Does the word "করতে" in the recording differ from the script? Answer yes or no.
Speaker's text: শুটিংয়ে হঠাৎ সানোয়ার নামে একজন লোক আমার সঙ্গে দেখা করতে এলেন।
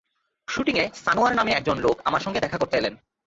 no